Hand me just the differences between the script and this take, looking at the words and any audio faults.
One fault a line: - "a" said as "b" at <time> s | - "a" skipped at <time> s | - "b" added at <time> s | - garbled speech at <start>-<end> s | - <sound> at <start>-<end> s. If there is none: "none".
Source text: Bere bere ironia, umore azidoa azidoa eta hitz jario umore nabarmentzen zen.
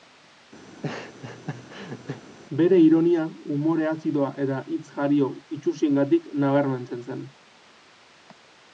- laugh at 0.7-2.2 s
- "bere" skipped at 2.8 s
- "azidoa" skipped at 4.3 s
- "umore" said as "itsusiengatik" at 5.6 s